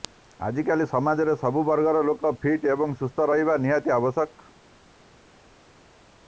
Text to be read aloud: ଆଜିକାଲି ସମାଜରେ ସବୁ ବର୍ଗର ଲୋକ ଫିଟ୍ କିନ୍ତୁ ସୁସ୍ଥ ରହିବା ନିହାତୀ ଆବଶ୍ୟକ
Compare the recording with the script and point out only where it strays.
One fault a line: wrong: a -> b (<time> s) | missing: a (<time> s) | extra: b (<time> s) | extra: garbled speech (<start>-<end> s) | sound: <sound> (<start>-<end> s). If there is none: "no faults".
wrong: କିନ୍ତୁ -> ଏବଂ (2.7 s)